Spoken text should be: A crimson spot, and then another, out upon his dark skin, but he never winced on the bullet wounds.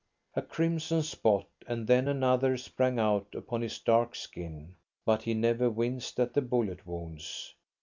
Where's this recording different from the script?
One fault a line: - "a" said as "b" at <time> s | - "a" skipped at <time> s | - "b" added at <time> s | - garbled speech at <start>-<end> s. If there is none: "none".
- "sprang" added at 2.6 s
- "on" said as "at" at 6.2 s